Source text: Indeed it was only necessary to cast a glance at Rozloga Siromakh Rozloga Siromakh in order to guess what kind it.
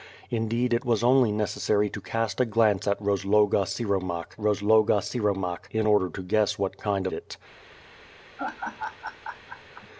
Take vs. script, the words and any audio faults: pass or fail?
fail